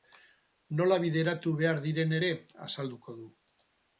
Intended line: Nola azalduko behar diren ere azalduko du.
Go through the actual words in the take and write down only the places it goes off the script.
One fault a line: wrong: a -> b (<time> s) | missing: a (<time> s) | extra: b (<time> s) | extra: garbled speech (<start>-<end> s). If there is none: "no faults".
wrong: azalduko -> bideratu (1.0 s)